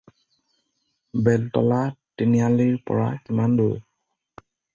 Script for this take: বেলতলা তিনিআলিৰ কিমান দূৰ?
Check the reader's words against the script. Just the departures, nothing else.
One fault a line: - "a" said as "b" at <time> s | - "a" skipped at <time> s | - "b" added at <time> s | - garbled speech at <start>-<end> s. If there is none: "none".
- "পৰা" added at 2.9 s